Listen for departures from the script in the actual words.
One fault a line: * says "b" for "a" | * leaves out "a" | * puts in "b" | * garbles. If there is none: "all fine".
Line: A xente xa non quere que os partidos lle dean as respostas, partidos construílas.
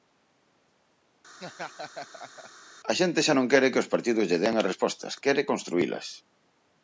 * says "quere" for "partidos"